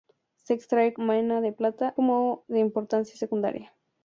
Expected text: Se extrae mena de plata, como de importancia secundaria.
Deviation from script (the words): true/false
false